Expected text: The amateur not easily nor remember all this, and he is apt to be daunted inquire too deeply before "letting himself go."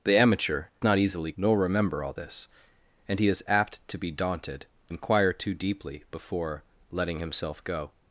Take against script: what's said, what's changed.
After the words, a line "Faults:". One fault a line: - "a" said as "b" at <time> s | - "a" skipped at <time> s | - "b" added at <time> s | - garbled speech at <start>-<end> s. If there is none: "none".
The amateur not easily nor remember all this, and he is apt to be daunted inquire too deeply before "letting himself go."
Faults:
none